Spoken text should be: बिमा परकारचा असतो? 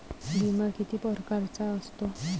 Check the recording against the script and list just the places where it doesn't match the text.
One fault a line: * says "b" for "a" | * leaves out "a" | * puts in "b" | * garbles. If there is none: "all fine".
* puts in "किती"